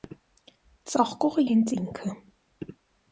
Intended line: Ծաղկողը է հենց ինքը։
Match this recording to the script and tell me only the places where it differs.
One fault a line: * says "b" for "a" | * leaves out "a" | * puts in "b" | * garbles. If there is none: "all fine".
all fine